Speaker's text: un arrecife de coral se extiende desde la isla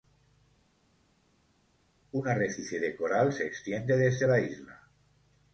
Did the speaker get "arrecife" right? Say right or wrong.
right